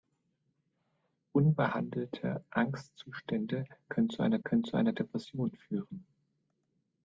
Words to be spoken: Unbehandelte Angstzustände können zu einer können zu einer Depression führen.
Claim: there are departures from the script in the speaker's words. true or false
false